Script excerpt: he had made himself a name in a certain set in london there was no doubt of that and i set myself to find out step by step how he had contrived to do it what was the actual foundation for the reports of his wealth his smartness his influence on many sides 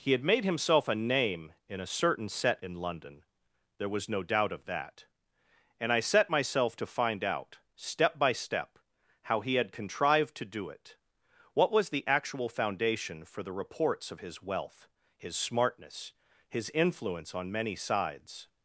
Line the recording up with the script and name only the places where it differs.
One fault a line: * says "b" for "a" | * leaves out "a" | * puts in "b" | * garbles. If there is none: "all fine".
all fine